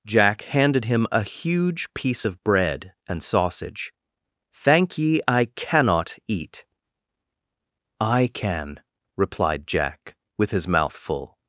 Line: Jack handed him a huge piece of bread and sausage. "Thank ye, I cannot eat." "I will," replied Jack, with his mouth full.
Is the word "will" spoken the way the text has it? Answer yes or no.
no